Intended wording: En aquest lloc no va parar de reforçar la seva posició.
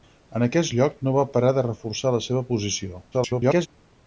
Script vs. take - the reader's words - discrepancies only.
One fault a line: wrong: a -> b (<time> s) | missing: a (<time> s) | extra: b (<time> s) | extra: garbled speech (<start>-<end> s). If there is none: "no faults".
extra: garbled speech (3.1-3.7 s)